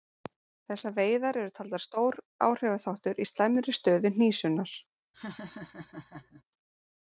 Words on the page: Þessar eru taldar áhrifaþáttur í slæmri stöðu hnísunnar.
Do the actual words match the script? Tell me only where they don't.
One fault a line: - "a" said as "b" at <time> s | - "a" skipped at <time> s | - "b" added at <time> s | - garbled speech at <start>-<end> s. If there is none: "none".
- "veiðar" added at 0.9 s
- "stór" added at 1.9 s